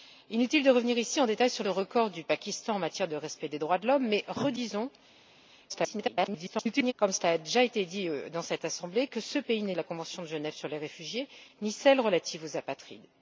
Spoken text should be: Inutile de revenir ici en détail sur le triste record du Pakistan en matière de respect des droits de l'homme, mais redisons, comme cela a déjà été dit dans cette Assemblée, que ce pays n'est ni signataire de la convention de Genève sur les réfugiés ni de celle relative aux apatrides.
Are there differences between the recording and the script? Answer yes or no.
yes